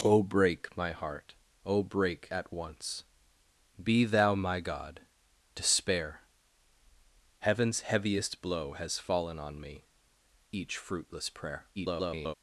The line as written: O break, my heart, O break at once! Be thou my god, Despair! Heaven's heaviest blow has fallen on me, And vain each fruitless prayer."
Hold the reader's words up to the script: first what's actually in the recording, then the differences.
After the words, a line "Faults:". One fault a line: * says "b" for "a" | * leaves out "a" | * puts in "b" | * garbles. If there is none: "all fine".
O break, my heart, O break at once! Be thou my god, Despair! Heaven's heaviest blow has fallen on me, Each fruitless prayer." [garbled]
Faults:
* leaves out "And vain"
* garbles